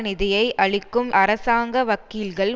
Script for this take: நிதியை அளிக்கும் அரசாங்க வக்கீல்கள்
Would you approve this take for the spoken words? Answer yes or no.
yes